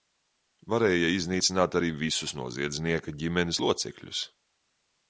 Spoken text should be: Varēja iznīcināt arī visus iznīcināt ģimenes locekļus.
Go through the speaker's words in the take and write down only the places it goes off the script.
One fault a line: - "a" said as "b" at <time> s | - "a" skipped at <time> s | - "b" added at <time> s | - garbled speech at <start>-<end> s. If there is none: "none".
- "iznīcināt" said as "noziedznieka" at 2.4 s